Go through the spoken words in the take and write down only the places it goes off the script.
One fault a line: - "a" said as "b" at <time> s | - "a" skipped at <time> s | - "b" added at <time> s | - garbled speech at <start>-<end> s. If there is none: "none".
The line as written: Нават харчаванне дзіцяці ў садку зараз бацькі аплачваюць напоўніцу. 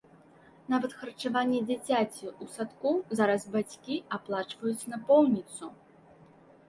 none